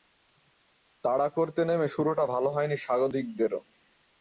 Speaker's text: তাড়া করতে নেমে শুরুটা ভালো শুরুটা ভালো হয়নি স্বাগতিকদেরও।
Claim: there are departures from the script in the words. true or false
true